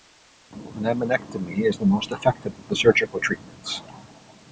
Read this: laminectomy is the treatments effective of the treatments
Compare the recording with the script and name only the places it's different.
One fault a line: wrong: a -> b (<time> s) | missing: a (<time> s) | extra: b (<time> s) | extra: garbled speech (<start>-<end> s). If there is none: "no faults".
wrong: treatments -> most (1.8 s)
extra: surgical (2.8 s)